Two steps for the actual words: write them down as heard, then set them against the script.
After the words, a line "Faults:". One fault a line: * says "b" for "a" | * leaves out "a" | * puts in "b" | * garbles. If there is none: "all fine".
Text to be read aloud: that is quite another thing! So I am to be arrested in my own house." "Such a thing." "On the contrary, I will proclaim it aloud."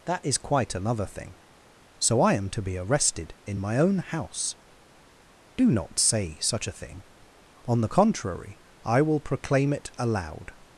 that is quite another thing! So I am to be arrested in my own house." "Do not say such a thing." "On the contrary, I will proclaim it aloud."
Faults:
* puts in "Do not say"